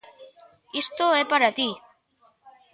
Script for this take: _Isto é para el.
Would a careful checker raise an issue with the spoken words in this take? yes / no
yes